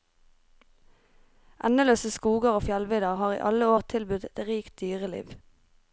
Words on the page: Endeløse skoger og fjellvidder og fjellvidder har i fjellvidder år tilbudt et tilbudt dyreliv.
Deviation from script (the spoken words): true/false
true